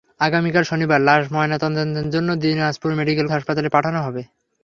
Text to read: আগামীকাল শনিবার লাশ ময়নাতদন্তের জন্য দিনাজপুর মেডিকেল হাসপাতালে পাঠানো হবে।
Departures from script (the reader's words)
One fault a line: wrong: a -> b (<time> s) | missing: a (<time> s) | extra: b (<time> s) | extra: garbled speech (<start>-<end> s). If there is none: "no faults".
no faults